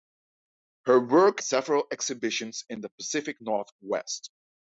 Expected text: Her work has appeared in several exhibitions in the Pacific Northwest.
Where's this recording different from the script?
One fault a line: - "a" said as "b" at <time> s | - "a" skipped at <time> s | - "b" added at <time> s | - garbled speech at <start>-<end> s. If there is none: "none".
- "has appeared in" skipped at 1.4 s